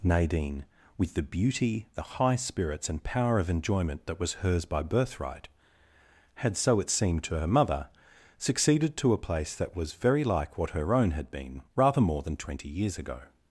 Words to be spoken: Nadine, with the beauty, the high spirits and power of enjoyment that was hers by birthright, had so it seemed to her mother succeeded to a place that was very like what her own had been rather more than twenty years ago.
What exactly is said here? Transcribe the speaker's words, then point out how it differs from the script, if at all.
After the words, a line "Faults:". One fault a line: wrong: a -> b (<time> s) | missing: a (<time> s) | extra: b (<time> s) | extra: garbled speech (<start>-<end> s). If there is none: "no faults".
Nadine, with the beauty, the high spirits and power of enjoyment that was hers by birthright, had so it seemed to her mother succeeded to a place that was very like what her own had been rather more than twenty years ago.
Faults:
no faults